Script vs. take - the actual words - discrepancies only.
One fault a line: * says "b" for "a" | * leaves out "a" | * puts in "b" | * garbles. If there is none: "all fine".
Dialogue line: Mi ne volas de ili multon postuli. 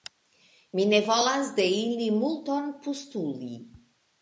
all fine